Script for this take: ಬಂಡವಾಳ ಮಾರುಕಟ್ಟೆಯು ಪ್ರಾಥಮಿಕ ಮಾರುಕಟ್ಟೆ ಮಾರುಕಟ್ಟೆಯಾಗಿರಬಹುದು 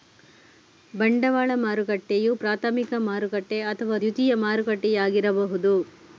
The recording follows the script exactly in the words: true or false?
false